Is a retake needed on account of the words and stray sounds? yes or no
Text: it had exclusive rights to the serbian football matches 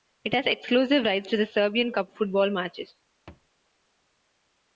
yes